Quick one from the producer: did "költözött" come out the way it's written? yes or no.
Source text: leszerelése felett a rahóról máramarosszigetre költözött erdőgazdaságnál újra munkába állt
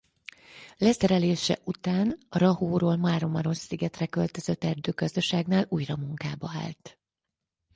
yes